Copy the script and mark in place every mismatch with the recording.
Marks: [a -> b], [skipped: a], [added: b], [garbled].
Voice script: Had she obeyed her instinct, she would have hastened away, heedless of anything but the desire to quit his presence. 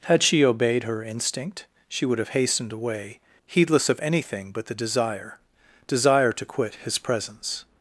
Had she obeyed her instinct, she would have hastened away, heedless of anything but the desire [added: desire] to quit his presence.